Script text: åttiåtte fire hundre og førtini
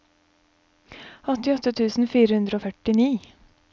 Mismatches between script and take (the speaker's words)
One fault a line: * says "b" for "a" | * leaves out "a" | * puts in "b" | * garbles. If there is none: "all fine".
* puts in "tusen"